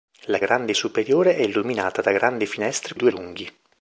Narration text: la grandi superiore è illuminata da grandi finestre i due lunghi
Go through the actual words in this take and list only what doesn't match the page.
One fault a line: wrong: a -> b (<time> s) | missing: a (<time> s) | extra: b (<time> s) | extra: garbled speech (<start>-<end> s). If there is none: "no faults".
no faults